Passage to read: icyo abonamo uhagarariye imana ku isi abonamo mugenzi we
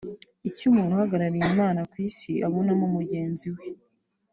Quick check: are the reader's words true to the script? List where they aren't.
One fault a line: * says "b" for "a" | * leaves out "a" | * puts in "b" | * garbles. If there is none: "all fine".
* says "umuntu" for "abonamo"